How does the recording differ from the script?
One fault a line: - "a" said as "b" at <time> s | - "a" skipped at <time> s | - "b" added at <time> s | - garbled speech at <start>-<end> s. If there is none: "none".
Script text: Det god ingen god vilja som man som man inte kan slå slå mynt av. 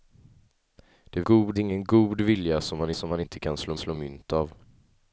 none